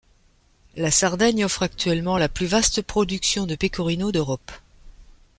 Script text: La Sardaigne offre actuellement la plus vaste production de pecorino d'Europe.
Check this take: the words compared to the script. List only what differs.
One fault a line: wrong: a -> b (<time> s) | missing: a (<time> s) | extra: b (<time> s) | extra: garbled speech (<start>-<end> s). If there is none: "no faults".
no faults